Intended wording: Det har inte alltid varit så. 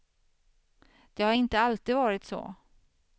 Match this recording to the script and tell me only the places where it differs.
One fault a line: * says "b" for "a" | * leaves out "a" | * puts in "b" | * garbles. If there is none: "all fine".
all fine